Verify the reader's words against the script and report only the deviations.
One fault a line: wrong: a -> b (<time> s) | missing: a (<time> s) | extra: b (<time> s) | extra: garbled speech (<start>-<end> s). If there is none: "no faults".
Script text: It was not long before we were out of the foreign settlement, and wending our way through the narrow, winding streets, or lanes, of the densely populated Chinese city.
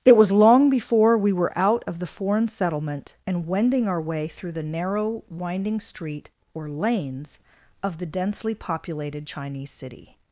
missing: not (0.3 s)
wrong: streets -> street (5.8 s)